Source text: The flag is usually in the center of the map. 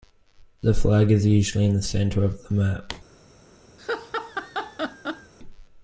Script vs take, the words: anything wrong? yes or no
no